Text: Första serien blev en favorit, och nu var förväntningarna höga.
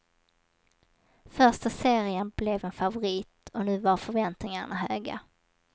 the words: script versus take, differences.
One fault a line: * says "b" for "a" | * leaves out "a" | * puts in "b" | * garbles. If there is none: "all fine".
all fine